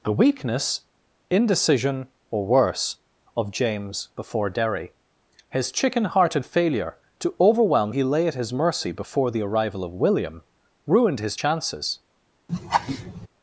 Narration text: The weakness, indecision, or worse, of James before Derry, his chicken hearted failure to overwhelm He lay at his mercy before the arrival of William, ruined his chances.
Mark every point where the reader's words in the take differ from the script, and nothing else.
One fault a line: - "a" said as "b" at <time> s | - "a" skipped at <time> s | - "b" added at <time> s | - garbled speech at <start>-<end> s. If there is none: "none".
none